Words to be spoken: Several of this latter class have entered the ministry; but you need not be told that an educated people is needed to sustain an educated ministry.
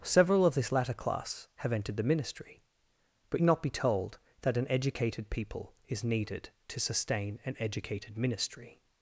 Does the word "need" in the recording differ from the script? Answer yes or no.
yes